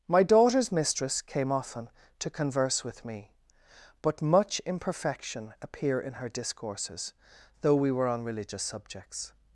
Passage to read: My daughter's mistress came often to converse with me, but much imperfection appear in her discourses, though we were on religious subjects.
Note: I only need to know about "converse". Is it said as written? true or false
true